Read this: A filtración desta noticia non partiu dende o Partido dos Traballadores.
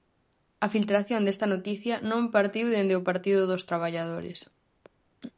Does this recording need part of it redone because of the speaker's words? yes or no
no